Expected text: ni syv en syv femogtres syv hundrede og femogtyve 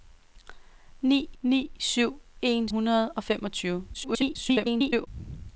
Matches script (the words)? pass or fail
fail